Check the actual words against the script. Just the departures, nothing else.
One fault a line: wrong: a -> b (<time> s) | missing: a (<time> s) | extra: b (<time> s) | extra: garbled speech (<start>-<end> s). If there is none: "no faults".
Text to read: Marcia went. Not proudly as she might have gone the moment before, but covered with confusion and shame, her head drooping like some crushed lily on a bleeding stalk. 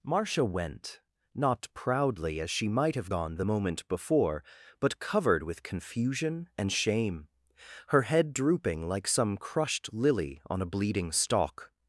no faults